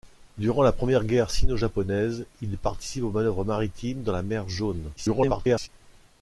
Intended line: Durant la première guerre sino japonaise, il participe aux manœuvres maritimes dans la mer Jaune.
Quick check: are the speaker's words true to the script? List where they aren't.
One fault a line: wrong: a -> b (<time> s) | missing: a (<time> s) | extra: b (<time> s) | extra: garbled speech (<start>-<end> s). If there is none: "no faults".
extra: garbled speech (5.0-5.7 s)